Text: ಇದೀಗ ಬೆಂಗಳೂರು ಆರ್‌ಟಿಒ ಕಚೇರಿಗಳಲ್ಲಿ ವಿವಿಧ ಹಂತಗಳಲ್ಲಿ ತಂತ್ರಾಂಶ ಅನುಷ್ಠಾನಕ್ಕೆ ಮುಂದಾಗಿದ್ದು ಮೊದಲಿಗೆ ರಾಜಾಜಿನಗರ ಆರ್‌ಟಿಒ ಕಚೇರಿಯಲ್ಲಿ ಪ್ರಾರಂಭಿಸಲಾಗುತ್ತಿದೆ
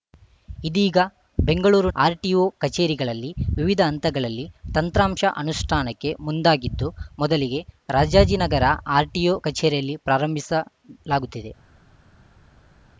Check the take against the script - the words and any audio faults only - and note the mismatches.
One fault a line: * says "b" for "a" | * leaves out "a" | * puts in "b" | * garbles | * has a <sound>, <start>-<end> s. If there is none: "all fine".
all fine